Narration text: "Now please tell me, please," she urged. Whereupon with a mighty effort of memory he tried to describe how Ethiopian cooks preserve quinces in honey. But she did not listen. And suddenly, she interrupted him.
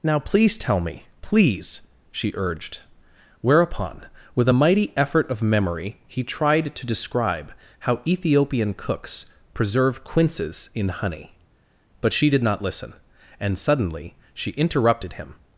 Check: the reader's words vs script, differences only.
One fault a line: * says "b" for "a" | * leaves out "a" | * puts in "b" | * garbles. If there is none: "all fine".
all fine